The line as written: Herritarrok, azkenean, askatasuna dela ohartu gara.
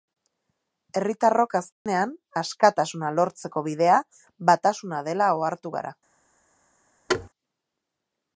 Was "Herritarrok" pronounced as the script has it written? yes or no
yes